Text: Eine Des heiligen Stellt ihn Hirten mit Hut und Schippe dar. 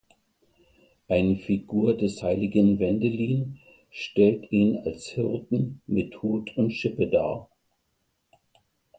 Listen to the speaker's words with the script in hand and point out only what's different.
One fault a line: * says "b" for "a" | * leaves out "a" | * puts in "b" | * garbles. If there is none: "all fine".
* puts in "Figur"
* puts in "Wendelin"
* puts in "als"